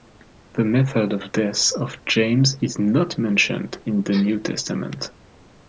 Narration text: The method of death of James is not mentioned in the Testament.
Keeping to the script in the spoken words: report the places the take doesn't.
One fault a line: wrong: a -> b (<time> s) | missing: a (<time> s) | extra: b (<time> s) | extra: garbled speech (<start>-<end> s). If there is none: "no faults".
extra: New (4.1 s)